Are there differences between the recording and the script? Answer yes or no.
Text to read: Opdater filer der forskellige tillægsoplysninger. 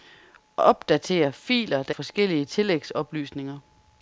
no